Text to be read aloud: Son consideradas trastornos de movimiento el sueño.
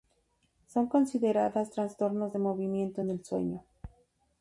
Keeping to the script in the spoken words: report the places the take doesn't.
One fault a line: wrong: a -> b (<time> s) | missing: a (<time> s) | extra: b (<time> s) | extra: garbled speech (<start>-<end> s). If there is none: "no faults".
extra: en (3.0 s)